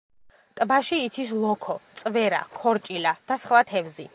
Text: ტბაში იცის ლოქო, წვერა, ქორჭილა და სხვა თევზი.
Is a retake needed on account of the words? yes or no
no